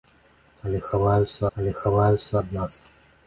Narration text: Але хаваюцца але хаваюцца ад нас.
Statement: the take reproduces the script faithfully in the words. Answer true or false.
true